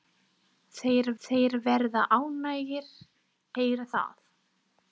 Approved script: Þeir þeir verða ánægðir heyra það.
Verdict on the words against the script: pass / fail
pass